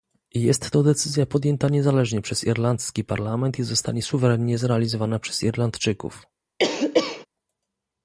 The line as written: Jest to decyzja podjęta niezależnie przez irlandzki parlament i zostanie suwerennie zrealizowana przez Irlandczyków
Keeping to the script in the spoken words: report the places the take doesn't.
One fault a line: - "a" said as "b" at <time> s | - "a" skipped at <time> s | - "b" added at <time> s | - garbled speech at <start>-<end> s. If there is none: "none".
none